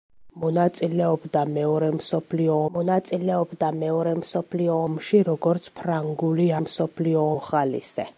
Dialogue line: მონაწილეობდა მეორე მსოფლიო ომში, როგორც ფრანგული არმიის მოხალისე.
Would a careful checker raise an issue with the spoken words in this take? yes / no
yes